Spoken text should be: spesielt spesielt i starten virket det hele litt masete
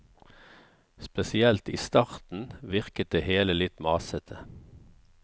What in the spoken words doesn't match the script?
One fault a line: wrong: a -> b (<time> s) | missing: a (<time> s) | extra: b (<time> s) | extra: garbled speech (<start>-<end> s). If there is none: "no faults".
missing: spesielt (1.7 s)